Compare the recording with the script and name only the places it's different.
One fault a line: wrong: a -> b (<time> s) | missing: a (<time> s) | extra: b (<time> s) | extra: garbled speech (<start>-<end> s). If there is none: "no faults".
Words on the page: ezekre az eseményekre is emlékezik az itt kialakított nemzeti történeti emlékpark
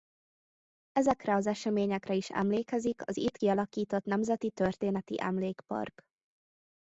no faults